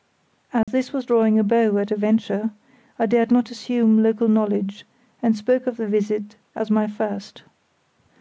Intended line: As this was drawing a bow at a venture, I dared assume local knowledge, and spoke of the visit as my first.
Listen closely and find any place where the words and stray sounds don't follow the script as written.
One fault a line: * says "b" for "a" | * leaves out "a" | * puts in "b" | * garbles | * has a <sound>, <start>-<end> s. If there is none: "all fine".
* has a dropout, 0.6-0.7 s
* puts in "not"